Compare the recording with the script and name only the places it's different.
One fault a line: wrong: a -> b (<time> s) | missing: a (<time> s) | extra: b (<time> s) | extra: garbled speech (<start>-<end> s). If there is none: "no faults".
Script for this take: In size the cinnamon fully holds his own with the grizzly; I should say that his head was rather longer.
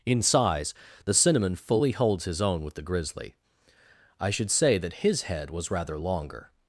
no faults